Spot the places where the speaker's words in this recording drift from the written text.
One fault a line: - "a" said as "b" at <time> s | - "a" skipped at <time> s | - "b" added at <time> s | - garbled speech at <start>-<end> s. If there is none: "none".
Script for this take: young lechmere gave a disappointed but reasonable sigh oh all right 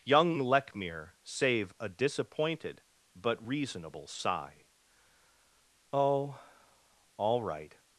- "gave" said as "save" at 1.2 s